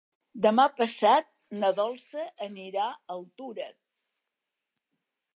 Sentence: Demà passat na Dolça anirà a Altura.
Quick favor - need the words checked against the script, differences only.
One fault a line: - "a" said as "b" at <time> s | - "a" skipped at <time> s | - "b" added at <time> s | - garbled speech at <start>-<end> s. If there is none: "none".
none